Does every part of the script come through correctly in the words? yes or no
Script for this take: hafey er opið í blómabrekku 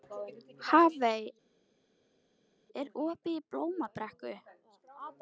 yes